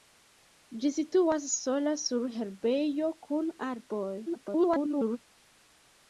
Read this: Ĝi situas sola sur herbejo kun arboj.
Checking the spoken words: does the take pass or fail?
fail